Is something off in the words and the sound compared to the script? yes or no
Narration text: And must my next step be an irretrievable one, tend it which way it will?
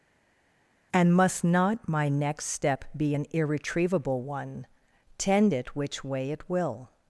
yes